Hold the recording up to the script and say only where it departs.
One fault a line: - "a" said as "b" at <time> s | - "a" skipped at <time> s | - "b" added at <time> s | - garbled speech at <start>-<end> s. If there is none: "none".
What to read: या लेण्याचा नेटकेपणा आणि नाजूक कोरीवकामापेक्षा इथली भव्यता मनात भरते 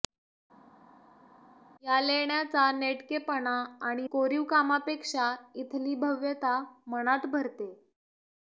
- "नाजूक" skipped at 4.1 s